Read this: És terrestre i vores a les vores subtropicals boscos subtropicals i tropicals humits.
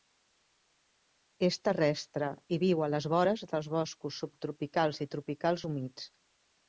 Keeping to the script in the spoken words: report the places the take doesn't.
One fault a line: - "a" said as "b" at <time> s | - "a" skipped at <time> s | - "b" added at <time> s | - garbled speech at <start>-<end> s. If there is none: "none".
- "vores" said as "viu" at 2.6 s
- "subtropicals" said as "dels" at 3.5 s